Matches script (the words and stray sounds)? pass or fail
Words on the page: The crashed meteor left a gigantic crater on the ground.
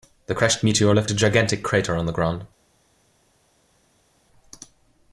pass